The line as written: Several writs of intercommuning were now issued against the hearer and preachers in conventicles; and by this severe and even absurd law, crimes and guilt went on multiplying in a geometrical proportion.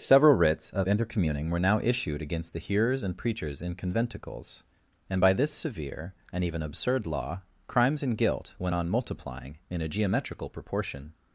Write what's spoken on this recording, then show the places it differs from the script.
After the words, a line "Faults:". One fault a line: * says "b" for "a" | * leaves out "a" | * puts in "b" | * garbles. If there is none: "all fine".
Several writs of intercommuning were now issued against the hearers and preachers in conventicles; and by this severe and even absurd law, crimes and guilt went on multiplying in a geometrical proportion.
Faults:
* says "hearers" for "hearer"